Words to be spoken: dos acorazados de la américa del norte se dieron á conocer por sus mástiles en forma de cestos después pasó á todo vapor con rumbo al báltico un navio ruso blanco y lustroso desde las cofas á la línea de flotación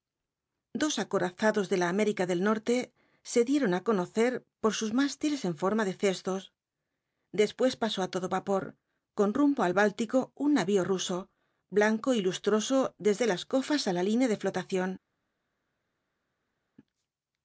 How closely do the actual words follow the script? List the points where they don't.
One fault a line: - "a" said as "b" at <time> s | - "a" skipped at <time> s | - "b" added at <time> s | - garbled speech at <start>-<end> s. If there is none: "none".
none